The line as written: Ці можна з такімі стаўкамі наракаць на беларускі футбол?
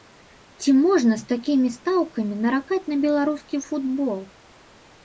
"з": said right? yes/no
yes